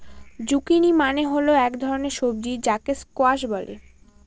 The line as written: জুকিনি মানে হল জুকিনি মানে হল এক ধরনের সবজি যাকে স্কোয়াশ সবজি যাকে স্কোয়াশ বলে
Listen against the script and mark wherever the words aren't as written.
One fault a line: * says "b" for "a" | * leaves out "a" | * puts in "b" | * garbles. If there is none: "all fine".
* leaves out "জুকিনি মানে হল"
* leaves out "সবজি যাকে স্কোয়াশ"